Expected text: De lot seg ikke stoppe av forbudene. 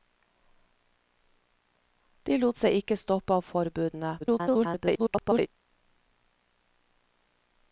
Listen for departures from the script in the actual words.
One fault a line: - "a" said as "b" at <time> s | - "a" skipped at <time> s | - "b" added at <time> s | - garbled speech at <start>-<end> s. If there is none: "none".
- garbled speech at 4.2-5.5 s